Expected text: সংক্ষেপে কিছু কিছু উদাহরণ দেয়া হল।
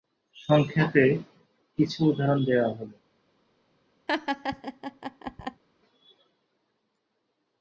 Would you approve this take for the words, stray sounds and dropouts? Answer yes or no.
no